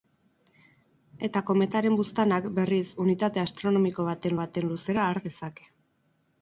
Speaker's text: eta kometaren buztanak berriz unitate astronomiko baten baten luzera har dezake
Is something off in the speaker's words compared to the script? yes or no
no